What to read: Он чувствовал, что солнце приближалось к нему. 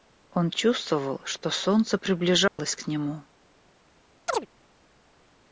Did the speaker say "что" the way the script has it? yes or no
yes